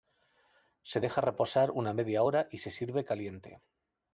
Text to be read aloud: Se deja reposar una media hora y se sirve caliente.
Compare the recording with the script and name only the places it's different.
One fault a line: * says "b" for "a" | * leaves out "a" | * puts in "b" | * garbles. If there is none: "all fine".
all fine